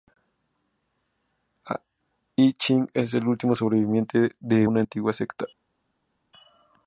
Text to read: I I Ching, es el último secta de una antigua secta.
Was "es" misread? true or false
false